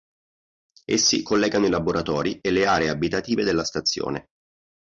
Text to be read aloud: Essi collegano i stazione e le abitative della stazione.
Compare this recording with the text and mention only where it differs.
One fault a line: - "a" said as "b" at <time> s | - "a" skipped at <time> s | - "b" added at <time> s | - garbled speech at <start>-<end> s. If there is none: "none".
- "stazione" said as "laboratori" at 1.7 s
- "aree" added at 2.6 s